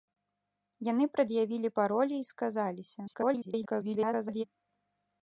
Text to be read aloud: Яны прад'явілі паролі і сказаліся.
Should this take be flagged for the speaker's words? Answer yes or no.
yes